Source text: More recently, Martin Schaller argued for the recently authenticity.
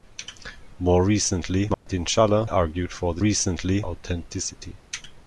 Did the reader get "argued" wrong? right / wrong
right